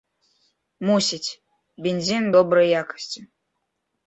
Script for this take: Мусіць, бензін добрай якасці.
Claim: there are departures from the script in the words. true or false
false